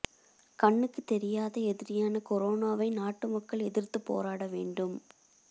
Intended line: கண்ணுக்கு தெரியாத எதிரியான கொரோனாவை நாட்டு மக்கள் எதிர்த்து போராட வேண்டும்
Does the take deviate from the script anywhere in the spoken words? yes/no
no